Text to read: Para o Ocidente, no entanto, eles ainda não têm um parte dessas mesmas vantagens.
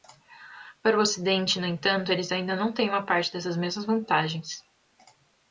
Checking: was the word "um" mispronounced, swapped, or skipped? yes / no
yes